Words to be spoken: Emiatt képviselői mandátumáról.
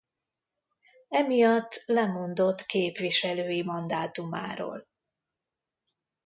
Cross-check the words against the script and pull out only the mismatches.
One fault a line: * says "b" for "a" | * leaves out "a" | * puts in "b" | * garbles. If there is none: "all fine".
* puts in "lemondott"